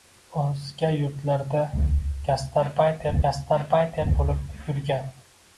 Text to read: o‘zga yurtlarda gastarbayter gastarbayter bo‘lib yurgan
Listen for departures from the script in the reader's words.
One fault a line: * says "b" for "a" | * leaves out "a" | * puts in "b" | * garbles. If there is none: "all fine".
all fine